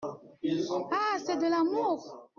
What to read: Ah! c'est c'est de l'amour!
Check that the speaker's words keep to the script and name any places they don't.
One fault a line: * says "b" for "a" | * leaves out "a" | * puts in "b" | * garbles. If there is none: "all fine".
* leaves out "c'est"